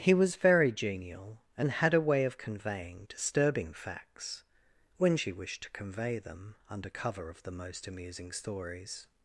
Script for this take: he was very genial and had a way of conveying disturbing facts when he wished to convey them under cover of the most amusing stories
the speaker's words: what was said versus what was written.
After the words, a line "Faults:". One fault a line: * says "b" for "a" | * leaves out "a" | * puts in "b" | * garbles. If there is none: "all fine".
he was very genial and had a way of conveying disturbing facts when she wished to convey them under cover of the most amusing stories
Faults:
* says "she" for "he"